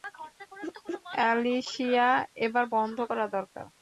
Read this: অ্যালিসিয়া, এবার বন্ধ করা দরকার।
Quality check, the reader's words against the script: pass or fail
pass